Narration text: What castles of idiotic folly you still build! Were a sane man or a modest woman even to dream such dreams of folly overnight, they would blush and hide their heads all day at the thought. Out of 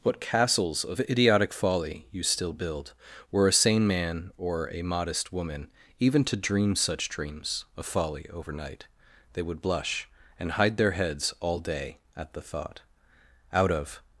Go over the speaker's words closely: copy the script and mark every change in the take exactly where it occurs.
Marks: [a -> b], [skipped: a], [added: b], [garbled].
What castles of idiotic folly you still build! Were a sane man or a modest woman even to dream such dreams of folly overnight, they would blush and hide their heads all day at the thought. Out of